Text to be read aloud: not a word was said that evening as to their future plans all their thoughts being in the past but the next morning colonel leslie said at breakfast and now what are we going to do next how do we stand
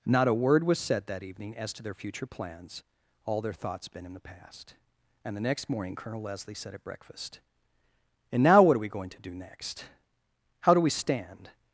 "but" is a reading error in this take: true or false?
true